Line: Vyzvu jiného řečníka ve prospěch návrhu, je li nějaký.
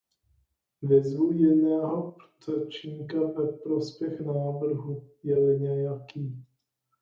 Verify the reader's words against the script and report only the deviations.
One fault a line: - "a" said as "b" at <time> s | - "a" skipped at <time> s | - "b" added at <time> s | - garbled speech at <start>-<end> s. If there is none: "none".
none